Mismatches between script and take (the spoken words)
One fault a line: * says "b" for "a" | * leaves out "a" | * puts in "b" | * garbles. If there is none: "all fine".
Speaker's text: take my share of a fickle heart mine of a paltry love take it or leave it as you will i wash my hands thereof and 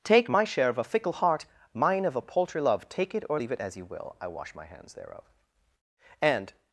all fine